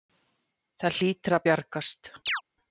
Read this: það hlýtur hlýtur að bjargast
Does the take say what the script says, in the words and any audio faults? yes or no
no